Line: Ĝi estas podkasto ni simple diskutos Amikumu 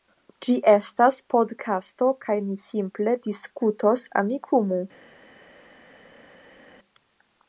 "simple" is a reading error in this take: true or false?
false